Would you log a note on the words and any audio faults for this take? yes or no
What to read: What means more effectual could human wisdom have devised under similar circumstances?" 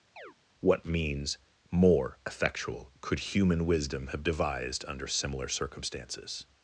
yes